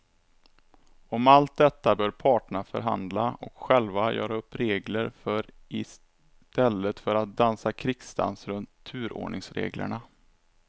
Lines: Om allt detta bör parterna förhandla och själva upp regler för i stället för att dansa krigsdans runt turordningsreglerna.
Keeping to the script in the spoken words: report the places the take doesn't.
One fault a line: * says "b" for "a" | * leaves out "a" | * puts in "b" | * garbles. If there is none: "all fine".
* puts in "göra"